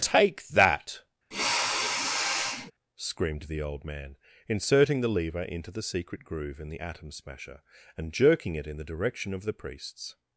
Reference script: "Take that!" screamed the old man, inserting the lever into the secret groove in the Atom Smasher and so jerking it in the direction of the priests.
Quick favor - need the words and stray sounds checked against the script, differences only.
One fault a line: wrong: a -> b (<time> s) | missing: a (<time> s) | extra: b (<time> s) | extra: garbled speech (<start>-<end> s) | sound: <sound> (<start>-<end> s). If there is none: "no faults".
sound: sniff (1.3-2.7 s)
missing: so (8.1 s)